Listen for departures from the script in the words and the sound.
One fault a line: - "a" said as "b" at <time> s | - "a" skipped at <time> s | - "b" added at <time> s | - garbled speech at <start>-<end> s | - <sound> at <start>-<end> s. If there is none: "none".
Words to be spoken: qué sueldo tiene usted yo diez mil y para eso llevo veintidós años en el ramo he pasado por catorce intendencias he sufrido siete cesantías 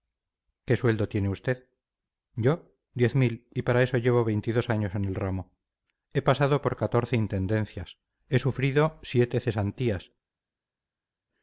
none